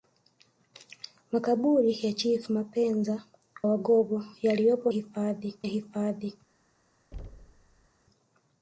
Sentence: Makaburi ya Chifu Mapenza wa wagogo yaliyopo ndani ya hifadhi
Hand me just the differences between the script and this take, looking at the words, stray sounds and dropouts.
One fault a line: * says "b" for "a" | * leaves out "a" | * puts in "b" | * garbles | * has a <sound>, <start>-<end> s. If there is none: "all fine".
* leaves out "wa"
* says "hifadhi" for "ndani"
* has a thud, 7.1-7.9 s